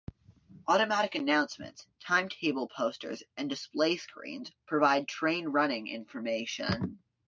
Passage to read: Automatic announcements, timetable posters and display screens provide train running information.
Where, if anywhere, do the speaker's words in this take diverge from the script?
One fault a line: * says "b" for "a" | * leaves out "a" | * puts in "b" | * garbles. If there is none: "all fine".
all fine